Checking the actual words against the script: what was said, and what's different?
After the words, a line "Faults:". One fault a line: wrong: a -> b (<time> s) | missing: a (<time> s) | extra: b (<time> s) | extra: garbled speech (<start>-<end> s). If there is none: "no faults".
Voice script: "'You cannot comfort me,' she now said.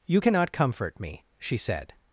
"'You cannot comfort me,' she said.
Faults:
missing: now (1.6 s)